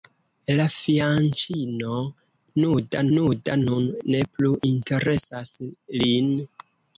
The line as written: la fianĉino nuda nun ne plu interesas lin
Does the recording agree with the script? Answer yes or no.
no